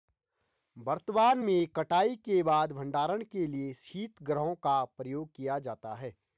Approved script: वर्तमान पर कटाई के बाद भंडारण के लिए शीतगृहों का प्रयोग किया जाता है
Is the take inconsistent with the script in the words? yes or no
yes